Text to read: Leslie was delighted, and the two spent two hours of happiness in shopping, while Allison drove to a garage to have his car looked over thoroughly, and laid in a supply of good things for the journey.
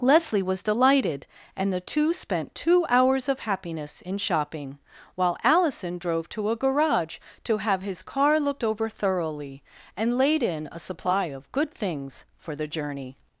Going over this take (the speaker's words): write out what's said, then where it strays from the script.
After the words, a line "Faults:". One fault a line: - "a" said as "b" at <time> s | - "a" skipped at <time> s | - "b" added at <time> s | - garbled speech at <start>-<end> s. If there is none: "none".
Leslie was delighted, and the two spent two hours of happiness in shopping, while Allison drove to a garage to have his car looked over thoroughly, and laid in a supply of good things for the journey.
Faults:
none